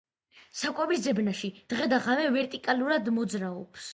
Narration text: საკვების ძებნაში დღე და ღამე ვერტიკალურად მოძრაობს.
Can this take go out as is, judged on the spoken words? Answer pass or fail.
pass